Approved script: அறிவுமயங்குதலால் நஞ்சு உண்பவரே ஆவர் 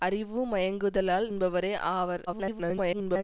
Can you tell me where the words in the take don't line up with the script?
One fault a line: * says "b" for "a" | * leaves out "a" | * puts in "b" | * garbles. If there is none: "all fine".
* leaves out "நஞ்சு"
* garbles